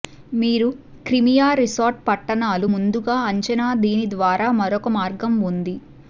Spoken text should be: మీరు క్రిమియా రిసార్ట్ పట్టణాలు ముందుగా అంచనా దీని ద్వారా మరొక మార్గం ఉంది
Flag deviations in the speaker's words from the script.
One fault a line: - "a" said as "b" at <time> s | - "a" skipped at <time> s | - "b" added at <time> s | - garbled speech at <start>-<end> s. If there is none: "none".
none